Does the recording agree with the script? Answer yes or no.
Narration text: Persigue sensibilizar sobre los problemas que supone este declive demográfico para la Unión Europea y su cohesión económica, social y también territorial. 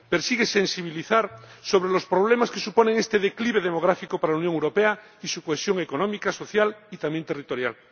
yes